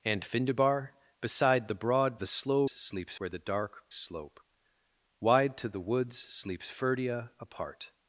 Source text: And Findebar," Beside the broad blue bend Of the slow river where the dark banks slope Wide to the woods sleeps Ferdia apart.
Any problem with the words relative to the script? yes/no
yes